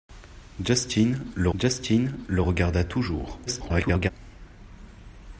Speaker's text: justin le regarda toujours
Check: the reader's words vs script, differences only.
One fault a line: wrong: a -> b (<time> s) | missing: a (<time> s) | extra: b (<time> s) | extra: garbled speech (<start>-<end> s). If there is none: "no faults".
extra: justin le (1.6 s)
extra: garbled speech (3.5-4.1 s)